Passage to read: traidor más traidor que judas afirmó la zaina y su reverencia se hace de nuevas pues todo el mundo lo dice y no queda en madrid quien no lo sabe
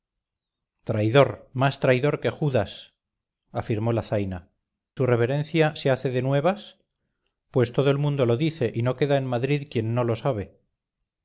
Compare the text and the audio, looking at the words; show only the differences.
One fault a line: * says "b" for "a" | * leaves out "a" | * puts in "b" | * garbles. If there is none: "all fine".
* leaves out "y"